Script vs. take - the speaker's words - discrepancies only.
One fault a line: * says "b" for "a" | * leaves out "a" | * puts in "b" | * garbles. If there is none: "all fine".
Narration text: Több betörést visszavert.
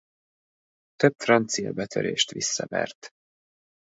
* puts in "francia"